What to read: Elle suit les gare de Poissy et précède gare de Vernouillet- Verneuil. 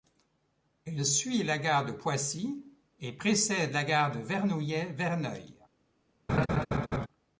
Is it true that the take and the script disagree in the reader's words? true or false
true